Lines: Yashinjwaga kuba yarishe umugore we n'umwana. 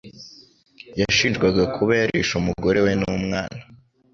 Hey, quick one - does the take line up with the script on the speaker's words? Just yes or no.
yes